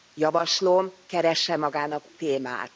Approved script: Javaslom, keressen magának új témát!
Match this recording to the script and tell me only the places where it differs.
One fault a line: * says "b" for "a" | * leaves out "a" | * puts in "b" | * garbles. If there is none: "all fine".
* leaves out "új"